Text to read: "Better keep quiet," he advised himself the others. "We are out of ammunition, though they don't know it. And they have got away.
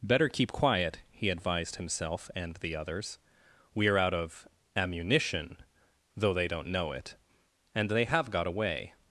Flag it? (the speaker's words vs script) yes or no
yes